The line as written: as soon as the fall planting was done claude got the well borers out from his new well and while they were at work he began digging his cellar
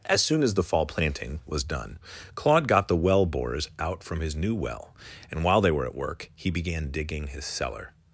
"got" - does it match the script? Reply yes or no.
yes